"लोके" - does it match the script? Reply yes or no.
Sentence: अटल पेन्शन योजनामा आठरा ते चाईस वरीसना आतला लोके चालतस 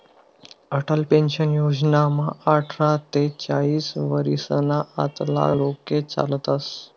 yes